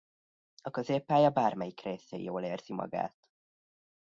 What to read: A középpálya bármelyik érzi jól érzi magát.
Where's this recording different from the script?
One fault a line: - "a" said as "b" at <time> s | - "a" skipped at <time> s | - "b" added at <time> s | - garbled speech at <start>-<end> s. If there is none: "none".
- "érzi" said as "részén" at 1.8 s